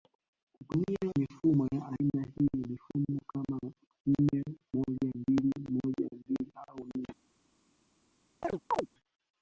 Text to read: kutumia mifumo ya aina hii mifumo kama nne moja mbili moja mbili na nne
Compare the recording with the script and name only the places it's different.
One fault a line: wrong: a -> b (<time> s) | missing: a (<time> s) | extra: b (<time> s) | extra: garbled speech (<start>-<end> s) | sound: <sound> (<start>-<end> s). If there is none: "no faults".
wrong: na -> au (6.7 s)
sound: chirp (8.4-8.9 s)